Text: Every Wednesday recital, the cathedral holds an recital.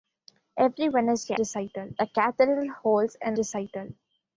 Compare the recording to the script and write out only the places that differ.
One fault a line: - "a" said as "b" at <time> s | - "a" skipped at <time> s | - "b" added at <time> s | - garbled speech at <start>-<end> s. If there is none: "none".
none